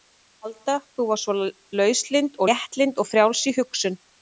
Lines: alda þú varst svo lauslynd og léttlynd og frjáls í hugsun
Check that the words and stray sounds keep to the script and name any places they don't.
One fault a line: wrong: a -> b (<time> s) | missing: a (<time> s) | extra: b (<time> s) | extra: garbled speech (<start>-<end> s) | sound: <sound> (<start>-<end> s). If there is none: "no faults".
missing: og (2.4 s)